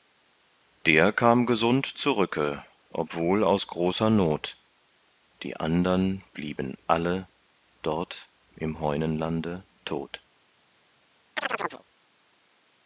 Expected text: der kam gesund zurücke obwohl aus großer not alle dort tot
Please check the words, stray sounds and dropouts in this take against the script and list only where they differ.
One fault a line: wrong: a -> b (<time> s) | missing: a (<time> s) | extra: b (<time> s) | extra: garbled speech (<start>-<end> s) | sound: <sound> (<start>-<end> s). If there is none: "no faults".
extra: die andern blieben (5.4 s)
extra: im heunenlande (8.6 s)
sound: chirp (11.4-11.8 s)